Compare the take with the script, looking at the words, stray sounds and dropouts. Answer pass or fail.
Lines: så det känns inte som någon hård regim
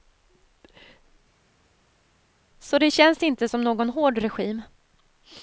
pass